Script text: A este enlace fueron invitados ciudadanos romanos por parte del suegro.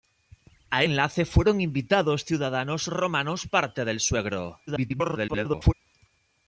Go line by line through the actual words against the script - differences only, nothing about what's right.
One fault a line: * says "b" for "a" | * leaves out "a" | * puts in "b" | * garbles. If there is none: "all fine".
* leaves out "este"
* leaves out "por"
* garbles